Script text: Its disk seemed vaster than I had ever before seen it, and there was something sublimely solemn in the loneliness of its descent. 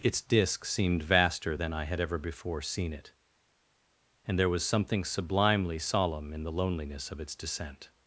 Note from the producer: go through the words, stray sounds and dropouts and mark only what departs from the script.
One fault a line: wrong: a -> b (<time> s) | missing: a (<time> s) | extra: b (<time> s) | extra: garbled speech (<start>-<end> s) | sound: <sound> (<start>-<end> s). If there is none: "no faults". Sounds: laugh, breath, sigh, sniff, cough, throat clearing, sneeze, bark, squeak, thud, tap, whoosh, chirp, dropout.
no faults